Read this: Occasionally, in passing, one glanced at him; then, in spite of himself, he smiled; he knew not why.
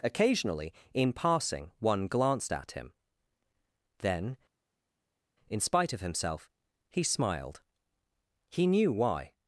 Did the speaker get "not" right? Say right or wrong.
wrong